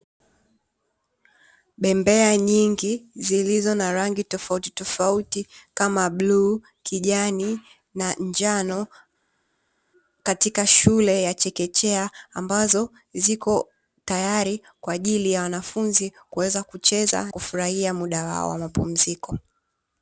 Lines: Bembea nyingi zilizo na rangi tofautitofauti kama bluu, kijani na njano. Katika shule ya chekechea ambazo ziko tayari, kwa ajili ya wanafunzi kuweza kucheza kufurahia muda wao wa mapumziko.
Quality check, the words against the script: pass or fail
pass